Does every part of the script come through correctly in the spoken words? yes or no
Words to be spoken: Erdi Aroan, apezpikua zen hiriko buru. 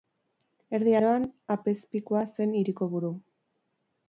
yes